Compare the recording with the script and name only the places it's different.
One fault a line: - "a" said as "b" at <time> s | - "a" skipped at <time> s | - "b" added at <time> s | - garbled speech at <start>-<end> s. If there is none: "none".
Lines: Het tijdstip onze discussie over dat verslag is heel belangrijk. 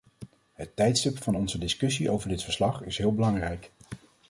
- "van" added at 1.2 s
- "dat" said as "dit" at 2.3 s